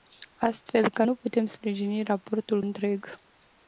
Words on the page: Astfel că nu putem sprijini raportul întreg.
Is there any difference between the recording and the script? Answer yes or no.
no